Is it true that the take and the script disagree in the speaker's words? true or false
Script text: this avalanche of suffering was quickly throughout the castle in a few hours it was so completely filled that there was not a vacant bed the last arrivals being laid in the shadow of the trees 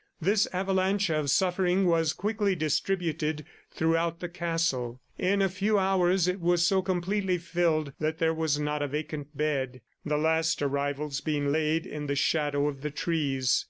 true